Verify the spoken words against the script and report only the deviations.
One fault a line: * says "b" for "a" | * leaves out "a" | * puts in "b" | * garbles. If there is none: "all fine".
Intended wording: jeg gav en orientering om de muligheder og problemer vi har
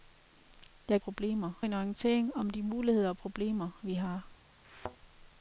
* says "problemer" for "gav"